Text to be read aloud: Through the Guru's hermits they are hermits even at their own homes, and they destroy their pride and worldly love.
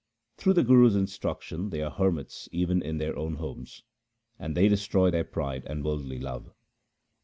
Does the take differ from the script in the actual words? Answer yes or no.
yes